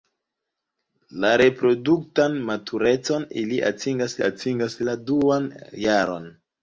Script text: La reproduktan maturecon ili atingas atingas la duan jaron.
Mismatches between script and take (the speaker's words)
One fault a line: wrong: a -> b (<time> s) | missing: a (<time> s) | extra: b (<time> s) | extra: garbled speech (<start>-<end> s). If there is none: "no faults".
no faults